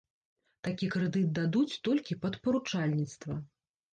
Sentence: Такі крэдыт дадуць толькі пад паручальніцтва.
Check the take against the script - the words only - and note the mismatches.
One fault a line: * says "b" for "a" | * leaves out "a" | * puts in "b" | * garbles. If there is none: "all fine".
all fine